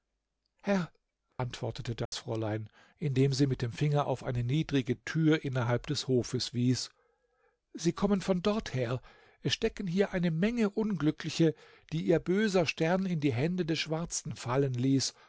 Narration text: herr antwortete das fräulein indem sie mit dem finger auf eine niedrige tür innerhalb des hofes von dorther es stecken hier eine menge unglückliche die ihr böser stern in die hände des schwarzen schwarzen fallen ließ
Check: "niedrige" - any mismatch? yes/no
no